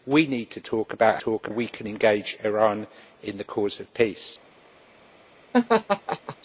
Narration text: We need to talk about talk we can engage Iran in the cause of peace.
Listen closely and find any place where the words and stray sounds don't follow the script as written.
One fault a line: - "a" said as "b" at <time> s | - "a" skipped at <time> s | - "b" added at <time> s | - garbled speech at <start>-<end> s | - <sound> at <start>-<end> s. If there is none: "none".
- laugh at 5.5-6.4 s